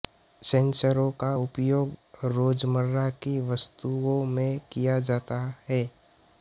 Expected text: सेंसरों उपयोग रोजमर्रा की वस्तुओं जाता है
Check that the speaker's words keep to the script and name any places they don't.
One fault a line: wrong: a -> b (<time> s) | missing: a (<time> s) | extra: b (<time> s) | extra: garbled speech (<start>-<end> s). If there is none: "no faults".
extra: का (1.2 s)
extra: में किया (4.3 s)